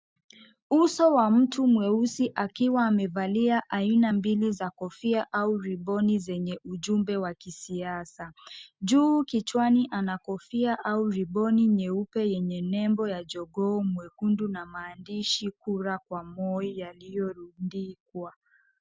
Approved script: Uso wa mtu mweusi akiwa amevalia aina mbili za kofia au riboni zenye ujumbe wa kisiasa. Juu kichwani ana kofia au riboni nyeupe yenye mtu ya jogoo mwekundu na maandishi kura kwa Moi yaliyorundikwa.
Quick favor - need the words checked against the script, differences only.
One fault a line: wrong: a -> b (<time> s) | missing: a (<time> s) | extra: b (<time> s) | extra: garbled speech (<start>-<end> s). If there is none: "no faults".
wrong: mtu -> nembo (12.6 s)